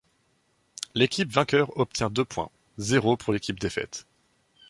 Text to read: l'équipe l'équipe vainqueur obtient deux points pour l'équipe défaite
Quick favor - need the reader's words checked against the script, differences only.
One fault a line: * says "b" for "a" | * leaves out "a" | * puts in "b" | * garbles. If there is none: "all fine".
* leaves out "l'équipe"
* puts in "zéro"